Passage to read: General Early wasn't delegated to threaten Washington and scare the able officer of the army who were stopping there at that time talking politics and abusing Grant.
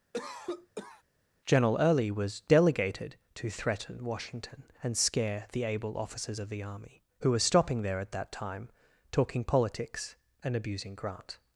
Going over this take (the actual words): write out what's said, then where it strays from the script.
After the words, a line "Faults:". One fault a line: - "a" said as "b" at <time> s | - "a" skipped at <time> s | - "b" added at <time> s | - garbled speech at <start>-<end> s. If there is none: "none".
General Early was delegated to threaten Washington and scare the able officers of the army who were stopping there at that time talking politics and abusing Grant.
Faults:
- "wasn't" said as "was" at 2.1 s
- "officer" said as "officers" at 6.0 s